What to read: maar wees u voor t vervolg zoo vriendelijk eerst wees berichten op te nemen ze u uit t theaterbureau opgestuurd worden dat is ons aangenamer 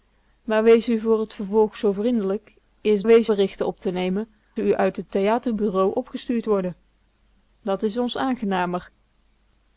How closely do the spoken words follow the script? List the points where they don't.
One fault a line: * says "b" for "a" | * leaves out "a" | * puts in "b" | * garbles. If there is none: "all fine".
all fine